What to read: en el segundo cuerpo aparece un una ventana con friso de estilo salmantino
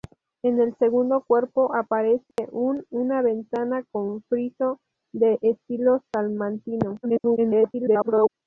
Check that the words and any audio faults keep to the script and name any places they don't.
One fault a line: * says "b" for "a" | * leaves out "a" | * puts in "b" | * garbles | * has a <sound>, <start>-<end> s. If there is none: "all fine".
* has a dropout, 2.3-2.4 s
* garbles